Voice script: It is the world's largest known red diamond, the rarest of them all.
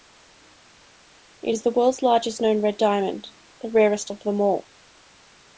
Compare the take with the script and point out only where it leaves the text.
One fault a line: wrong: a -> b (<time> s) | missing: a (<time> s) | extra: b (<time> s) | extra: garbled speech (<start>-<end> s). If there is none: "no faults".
no faults